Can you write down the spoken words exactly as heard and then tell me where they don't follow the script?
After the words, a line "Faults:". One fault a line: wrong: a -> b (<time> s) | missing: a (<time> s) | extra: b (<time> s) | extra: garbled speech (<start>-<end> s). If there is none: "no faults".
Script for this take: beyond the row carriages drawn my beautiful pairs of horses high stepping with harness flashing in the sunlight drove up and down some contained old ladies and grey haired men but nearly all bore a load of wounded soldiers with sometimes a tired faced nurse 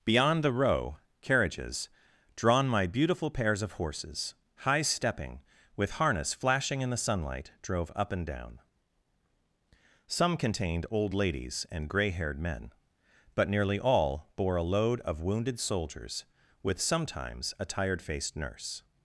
beyond the row carriages drawn my beautiful pairs of horses high stepping with harness flashing in the sunlight drove up and down some contained old ladies and grey haired men but nearly all bore a load of wounded soldiers with sometimes a tired faced nurse
Faults:
no faults